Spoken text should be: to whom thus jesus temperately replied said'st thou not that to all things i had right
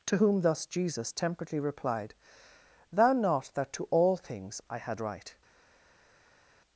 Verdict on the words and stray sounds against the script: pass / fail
fail